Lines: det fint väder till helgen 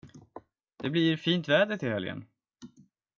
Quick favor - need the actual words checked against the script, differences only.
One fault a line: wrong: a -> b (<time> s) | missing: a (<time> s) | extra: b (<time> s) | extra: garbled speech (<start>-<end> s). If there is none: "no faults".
extra: blir (0.9 s)